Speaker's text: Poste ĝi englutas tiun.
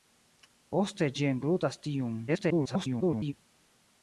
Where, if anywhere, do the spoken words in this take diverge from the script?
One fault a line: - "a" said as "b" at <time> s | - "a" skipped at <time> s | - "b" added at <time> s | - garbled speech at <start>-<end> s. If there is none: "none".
- garbled speech at 2.3-3.3 s